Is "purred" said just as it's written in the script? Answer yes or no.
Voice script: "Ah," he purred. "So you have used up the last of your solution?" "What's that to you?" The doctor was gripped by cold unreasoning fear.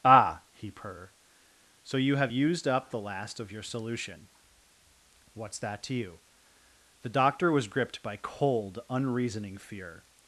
no